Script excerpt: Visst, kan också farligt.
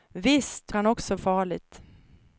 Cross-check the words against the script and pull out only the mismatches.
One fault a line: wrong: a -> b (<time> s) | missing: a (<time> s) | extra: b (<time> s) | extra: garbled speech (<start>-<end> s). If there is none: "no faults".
no faults